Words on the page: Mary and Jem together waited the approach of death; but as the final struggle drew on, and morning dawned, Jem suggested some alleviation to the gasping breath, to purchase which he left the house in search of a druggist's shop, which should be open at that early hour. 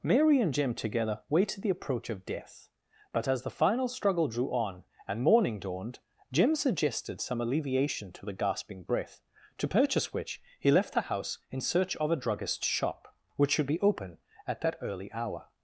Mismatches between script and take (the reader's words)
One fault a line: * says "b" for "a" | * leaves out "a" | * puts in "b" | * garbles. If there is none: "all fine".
all fine